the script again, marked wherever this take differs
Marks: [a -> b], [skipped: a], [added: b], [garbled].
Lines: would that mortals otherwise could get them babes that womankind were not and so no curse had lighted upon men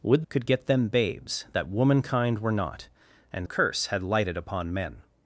would [skipped: that mortals otherwise] could get them babes that womankind were not and [skipped: so no] curse had lighted upon men